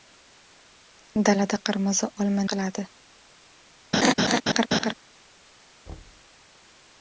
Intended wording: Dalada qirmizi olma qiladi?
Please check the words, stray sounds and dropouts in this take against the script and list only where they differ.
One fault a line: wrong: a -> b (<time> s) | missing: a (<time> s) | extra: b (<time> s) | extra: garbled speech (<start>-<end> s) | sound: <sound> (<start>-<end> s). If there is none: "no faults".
sound: laugh (3.9-4.9 s)
sound: thud (5.9-6.3 s)